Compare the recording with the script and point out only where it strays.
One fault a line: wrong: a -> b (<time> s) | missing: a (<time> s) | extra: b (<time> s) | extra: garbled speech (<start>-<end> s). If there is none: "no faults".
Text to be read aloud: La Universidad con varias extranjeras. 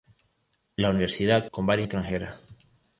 no faults